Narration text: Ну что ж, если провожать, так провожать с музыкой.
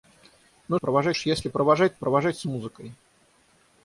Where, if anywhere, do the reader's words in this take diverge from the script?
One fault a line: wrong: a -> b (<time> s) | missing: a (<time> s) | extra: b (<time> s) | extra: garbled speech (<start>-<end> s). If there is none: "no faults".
wrong: что -> провожать (0.7 s)
missing: так (1.9 s)